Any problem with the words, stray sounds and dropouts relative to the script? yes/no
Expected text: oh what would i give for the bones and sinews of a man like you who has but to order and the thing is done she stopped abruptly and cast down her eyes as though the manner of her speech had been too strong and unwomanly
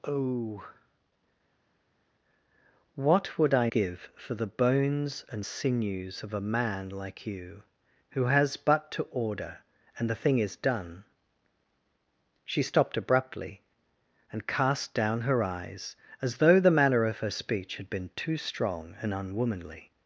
no